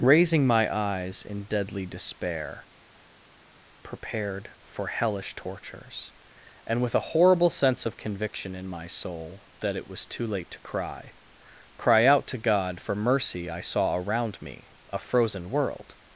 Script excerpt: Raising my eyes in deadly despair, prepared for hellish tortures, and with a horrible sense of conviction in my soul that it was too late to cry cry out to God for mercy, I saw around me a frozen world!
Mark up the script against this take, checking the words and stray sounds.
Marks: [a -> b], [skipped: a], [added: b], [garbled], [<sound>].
Raising my eyes in deadly despair, prepared for hellish tortures, and with a horrible sense of conviction in my soul that it was too late to cry cry out to God for mercy, I saw around me a frozen world!